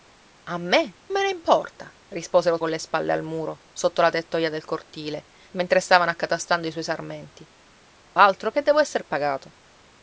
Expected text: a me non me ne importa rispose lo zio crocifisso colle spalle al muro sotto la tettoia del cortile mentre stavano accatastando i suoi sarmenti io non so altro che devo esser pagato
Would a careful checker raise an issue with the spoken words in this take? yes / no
yes